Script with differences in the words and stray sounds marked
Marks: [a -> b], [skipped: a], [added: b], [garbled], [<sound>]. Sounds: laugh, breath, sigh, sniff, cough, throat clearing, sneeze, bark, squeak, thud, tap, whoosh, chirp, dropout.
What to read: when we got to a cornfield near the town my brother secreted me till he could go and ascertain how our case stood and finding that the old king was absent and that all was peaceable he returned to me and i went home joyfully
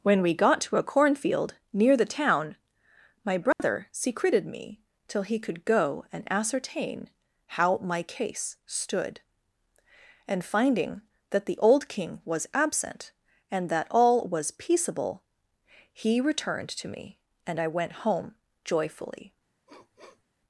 when we got to a cornfield near the town my brother [dropout] secreted me till he could go and ascertain how [our -> my] case stood and finding that the old king was absent and that all was peaceable he returned to me and i went home joyfully [sniff]